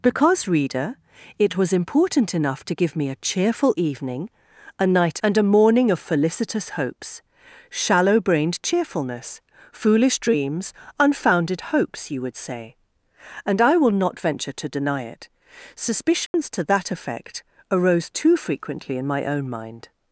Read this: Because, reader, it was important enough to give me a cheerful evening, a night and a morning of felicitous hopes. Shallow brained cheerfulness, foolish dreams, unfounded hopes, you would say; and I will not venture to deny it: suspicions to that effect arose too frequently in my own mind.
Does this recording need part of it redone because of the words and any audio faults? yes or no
yes